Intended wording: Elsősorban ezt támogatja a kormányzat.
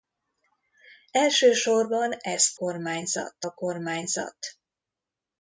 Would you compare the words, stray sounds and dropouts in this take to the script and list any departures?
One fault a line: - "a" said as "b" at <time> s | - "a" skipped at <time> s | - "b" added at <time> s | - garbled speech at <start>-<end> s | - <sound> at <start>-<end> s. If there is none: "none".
- "támogatja" said as "kormányzat" at 2.5 s